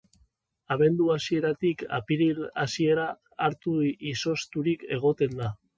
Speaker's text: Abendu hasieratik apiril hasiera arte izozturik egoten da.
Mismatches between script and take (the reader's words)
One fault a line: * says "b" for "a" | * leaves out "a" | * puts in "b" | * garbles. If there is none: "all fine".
all fine